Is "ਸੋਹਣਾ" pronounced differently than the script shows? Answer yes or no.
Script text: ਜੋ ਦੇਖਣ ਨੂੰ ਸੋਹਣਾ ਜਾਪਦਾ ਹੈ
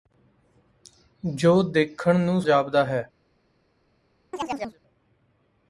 yes